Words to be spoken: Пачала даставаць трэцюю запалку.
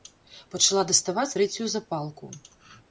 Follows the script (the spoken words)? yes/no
yes